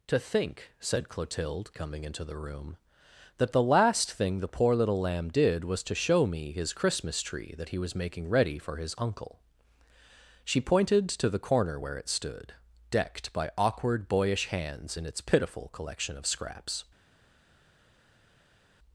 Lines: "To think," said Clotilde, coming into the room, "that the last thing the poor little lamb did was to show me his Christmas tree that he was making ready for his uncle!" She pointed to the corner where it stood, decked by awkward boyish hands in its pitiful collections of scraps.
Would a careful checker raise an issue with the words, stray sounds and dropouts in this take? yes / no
yes